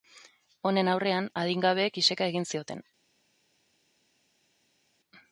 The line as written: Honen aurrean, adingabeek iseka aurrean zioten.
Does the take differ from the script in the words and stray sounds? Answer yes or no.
yes